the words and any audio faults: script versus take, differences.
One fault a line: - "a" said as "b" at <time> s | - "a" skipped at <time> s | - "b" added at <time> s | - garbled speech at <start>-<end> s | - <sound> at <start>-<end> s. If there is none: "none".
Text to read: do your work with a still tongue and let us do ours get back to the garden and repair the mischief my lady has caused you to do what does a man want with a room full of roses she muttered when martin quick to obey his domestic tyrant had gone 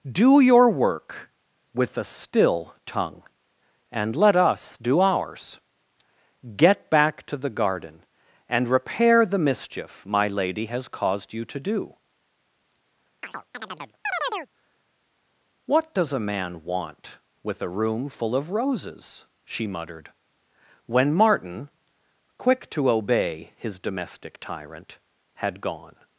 - chirp at 13.2-14.5 s